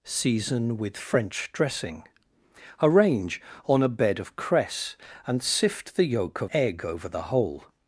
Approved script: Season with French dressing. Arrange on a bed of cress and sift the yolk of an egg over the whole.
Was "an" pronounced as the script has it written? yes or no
no